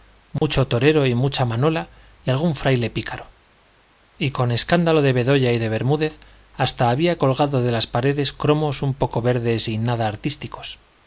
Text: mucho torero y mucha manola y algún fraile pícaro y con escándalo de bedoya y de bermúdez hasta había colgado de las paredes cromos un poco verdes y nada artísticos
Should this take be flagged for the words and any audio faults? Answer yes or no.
yes